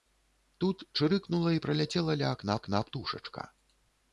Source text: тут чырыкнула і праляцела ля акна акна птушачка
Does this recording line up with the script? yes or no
yes